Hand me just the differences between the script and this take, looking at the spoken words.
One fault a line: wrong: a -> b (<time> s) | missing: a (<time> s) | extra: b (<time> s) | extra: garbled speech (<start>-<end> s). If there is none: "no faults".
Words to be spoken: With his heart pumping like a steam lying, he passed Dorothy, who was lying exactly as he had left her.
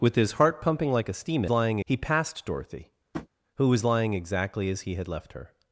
no faults